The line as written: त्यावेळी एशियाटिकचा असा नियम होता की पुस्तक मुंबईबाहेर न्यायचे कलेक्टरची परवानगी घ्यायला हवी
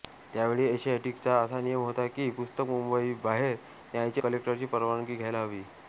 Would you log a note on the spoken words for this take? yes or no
no